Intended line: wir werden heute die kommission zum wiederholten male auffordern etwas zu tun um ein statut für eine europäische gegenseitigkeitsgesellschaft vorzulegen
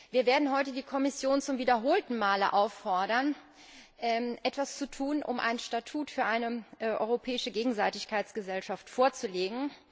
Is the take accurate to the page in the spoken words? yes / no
yes